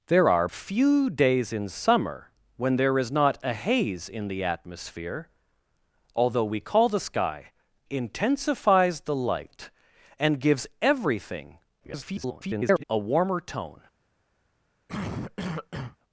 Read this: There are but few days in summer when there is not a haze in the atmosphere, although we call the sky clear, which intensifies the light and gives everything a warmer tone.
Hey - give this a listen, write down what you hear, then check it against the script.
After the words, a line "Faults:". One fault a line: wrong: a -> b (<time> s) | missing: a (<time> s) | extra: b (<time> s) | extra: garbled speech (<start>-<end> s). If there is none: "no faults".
There are few days in summer when there is not a haze in the atmosphere, although we call the sky intensifies the light and gives everything [garbled] a warmer tone.
Faults:
missing: but (0.5 s)
missing: clear which (7.5 s)
extra: garbled speech (11.8-12.8 s)